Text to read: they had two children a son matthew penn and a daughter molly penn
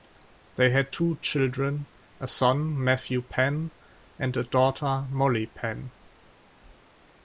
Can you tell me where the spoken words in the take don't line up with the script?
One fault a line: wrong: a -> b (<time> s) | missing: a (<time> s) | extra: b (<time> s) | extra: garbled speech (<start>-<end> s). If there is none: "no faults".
no faults